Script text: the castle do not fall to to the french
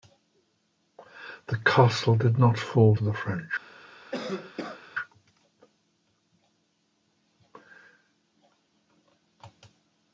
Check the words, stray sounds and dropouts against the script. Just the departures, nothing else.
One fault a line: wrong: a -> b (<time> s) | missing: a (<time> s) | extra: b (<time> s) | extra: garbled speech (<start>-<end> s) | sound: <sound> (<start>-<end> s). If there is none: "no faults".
wrong: do -> did (2.1 s)
missing: to (3.0 s)
sound: cough (4.1-4.8 s)